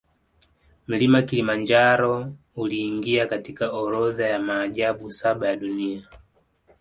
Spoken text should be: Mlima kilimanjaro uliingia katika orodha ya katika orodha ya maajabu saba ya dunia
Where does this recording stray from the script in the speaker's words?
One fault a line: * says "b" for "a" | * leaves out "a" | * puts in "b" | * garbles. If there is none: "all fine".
* leaves out "katika orodha ya"